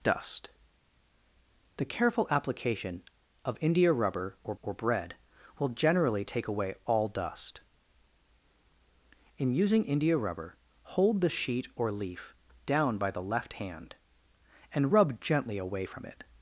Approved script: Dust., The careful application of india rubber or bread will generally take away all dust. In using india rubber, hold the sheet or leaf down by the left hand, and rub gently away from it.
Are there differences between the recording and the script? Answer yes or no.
yes